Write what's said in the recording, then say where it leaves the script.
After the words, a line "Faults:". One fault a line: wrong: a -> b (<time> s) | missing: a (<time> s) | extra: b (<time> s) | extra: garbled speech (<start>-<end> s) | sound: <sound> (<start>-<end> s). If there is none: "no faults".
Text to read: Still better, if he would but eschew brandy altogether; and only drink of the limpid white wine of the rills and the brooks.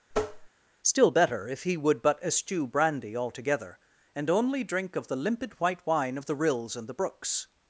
Still better, if he would but eschew brandy altogether; and only drink of the limpid white wine of the rills and the brooks.
Faults:
sound: tap (0.1-0.5 s)